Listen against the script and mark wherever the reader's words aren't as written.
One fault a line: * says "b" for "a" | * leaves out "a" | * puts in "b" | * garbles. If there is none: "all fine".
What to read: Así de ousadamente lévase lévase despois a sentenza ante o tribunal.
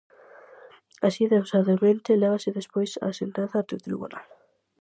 * leaves out "lévase"